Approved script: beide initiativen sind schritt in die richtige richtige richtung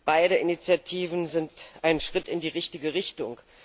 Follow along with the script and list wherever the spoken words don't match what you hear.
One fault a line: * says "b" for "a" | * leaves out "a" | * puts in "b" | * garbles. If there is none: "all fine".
* puts in "ein"
* leaves out "richtige"